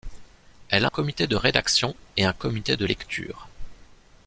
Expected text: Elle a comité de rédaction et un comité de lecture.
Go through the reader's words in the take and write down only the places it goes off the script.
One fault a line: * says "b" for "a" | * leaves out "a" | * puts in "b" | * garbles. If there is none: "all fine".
all fine